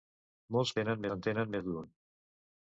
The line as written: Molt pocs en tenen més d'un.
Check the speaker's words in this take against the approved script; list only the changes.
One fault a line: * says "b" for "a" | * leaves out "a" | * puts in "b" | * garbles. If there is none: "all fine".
* says "tenen" for "pocs"